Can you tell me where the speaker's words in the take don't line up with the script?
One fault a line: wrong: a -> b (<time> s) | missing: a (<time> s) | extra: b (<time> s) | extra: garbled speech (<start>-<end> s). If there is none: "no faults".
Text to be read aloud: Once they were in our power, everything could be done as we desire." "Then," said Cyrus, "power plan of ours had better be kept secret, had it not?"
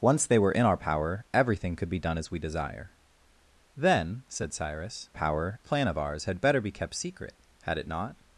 no faults